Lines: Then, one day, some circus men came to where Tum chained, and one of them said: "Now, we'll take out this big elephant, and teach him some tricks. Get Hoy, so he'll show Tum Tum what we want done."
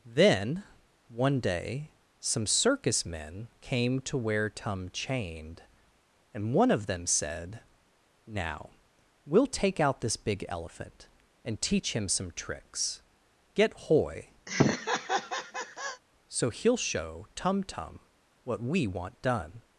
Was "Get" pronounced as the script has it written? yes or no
yes